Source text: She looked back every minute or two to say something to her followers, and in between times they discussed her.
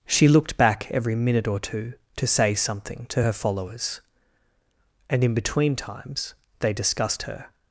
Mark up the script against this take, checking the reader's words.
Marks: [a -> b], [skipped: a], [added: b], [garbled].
She looked back every minute or two to say something to her followers, and in between times they discussed her.